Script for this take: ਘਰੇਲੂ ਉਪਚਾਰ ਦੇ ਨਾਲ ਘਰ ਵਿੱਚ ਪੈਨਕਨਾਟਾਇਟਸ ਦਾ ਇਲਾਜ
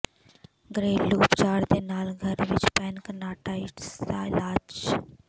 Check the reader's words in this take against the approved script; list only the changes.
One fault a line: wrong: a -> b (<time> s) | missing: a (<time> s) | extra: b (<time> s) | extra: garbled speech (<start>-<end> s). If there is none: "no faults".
no faults